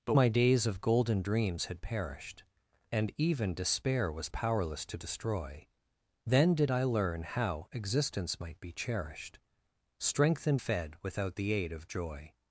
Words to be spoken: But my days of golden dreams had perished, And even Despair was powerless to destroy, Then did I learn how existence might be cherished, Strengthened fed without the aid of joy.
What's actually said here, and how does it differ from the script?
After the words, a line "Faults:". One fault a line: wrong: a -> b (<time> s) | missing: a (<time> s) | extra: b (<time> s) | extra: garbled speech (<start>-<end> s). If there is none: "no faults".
But my days of golden dreams had perished, And even Despair was powerless to destroy, Then did I learn how existence might be cherished, Strengthened fed without the aid of joy.
Faults:
no faults